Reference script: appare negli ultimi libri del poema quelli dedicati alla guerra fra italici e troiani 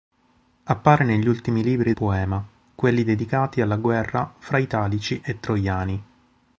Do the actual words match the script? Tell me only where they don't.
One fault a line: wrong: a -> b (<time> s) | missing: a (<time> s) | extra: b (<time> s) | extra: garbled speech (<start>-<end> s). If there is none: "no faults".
missing: del (1.9 s)